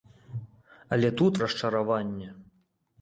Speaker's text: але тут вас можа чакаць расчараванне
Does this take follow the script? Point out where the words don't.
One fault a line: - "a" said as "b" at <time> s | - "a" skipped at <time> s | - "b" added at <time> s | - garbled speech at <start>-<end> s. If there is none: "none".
- "вас можа чакаць" skipped at 1.3 s